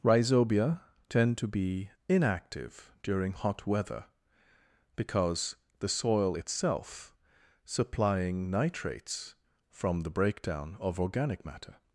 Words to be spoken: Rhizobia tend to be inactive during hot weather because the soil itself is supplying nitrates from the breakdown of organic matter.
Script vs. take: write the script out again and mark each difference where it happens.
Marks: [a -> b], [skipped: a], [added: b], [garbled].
Rhizobia tend to be inactive during hot weather because the soil itself [skipped: is] supplying nitrates from the breakdown of organic matter.